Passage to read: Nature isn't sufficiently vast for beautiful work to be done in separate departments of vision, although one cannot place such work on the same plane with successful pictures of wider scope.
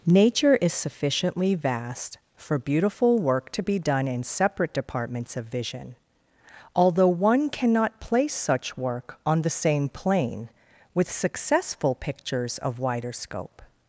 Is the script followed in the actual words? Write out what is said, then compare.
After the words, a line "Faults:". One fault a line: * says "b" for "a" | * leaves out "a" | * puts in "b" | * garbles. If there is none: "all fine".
Nature is sufficiently vast for beautiful work to be done in separate departments of vision, although one cannot place such work on the same plane with successful pictures of wider scope.
Faults:
* says "is" for "isn't"